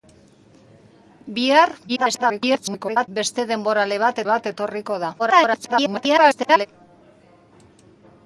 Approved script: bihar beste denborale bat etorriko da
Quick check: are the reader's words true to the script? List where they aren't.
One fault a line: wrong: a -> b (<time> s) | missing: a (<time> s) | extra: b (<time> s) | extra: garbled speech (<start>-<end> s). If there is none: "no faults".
extra: garbled speech (1.9-3.1 s)
extra: bat (4.3 s)
extra: garbled speech (5.2-6.7 s)